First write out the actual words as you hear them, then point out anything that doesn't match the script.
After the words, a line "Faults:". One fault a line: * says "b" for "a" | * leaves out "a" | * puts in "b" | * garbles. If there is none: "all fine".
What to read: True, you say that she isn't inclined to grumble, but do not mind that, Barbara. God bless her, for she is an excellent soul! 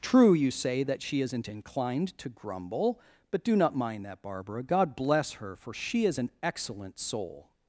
True, you say that she isn't inclined to grumble, but do not mind that, Barbara. God bless her, for she is an excellent soul!
Faults:
all fine